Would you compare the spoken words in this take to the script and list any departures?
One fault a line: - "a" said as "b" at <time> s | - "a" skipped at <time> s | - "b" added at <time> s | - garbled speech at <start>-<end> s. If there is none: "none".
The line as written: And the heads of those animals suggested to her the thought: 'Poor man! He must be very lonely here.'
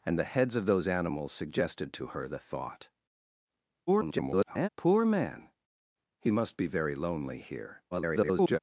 - garbled speech at 3.9-4.7 s
- garbled speech at 7.9-8.6 s